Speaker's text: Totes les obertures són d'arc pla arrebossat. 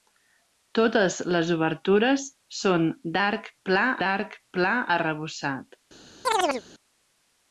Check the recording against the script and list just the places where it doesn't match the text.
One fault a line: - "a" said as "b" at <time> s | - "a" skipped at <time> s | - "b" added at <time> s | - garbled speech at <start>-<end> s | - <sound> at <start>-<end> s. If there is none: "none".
- "d'arc pla" added at 4.0 s
- chirp at 6.2-6.6 s